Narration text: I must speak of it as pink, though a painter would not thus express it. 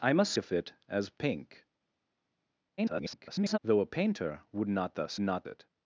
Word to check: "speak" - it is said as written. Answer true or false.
false